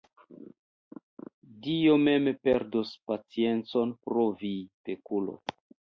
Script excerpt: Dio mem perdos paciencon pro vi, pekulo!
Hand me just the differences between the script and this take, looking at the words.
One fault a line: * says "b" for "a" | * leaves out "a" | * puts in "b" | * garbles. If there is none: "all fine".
all fine